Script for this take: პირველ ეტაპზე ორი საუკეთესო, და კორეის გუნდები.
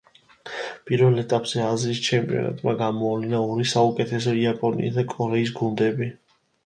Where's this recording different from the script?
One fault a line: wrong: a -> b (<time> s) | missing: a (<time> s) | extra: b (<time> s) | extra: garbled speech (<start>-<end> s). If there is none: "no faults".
extra: აზიის ჩემპიონატმა გამოავლინა (1.6 s)
extra: იაპონიის (4.4 s)